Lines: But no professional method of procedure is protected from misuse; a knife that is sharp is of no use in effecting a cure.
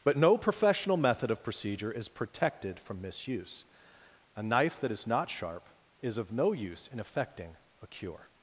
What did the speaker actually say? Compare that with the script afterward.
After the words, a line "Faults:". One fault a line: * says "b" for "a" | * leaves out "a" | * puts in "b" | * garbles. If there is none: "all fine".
But no professional method of procedure is protected from misuse; a knife that is not sharp is of no use in effecting a cure.
Faults:
* puts in "not"